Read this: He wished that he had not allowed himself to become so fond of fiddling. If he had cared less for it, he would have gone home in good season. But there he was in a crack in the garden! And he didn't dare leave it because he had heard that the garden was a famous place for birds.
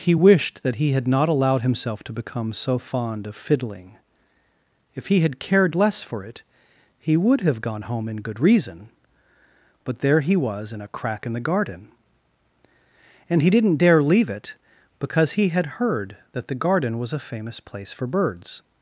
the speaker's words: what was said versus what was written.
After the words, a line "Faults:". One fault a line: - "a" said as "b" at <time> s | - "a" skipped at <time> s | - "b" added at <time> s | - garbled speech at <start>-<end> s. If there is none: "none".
He wished that he had not allowed himself to become so fond of fiddling. If he had cared less for it, he would have gone home in good reason. But there he was in a crack in the garden! And he didn't dare leave it because he had heard that the garden was a famous place for birds.
Faults:
- "season" said as "reason" at 8.4 s